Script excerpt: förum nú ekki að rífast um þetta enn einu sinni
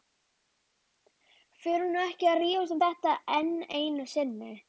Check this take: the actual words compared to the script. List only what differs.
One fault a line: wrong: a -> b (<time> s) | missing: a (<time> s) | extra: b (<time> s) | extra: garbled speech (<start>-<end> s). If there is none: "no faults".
no faults